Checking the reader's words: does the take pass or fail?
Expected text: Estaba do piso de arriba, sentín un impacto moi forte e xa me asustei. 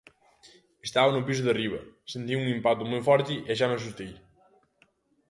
fail